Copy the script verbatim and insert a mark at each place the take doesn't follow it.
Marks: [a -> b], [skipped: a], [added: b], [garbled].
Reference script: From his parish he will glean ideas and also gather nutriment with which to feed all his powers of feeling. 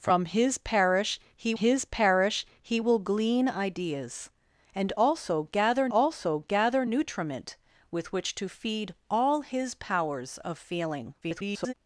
From his parish he [added: his parish he] will glean ideas and also gather [added: also gather] nutriment with which to feed all his powers of feeling. [garbled]